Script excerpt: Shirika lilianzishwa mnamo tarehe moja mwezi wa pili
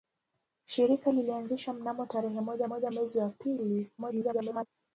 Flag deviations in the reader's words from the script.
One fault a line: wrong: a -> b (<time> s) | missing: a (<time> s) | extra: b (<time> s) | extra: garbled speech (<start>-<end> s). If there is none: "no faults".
extra: moja (2.6 s)
extra: garbled speech (4.0-4.7 s)